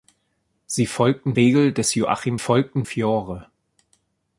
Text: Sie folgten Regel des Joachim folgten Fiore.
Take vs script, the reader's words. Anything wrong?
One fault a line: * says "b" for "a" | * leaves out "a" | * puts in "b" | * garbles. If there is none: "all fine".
all fine